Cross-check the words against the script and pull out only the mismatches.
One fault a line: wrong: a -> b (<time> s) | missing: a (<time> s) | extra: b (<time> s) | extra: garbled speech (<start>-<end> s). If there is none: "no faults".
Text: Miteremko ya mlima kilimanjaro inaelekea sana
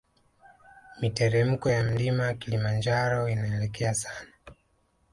no faults